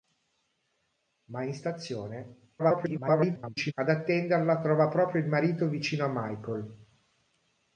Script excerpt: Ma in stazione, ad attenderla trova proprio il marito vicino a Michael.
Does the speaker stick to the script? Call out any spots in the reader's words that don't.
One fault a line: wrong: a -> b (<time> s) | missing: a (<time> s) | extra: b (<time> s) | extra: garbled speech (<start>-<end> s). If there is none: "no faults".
extra: garbled speech (2.6-3.7 s)